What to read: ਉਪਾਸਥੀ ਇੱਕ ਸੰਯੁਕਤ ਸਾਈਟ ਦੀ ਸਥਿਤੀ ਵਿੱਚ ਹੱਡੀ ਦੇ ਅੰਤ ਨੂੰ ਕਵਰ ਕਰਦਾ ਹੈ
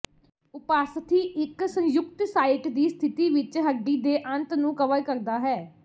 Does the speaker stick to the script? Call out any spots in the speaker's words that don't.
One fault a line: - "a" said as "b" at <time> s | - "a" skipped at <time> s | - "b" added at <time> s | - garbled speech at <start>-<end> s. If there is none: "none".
none